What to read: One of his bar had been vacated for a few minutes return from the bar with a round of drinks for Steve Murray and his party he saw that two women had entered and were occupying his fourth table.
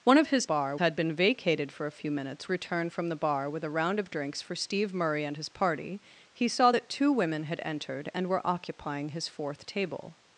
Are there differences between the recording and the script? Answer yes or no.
no